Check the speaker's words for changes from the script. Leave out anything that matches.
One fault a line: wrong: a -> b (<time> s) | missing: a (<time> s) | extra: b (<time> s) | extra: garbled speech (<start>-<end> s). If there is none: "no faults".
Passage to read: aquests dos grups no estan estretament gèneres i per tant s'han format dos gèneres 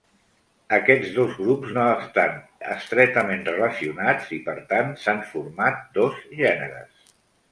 wrong: gèneres -> relacionats (3.5 s)